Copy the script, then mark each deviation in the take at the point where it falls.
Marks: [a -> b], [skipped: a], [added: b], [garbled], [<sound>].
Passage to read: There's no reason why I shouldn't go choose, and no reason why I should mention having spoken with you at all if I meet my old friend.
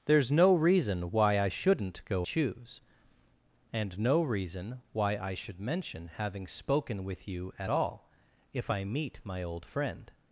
There's no reason why I shouldn't go choose, and no reason why I should mention having spoken with you at all if I meet my old friend.